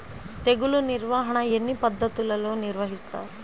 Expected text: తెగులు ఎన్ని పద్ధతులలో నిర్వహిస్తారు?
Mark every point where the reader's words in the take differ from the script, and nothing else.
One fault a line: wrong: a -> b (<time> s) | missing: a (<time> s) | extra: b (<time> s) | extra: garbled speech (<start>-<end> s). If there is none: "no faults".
extra: నిర్వాహణ (0.8 s)